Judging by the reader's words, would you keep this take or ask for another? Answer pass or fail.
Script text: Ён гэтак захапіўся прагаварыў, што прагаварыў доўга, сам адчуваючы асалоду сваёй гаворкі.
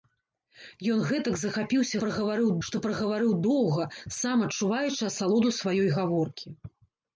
pass